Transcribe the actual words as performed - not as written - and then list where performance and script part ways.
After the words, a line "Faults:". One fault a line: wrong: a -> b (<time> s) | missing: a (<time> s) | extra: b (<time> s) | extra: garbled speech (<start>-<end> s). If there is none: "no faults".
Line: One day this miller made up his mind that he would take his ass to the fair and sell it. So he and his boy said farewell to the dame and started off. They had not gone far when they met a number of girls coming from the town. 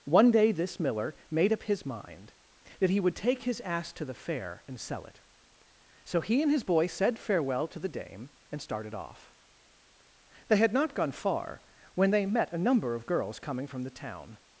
One day this miller made up his mind that he would take his ass to the fair and sell it. So he and his boy said farewell to the dame and started off. They had not gone far when they met a number of girls coming from the town.
Faults:
no faults